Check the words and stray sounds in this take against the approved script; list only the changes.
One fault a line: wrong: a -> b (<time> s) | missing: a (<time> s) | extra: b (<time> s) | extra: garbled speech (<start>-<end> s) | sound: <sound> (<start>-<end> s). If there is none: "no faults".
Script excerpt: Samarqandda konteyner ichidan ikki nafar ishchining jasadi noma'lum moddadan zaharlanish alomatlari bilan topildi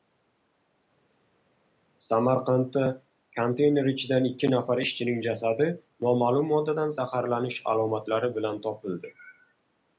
no faults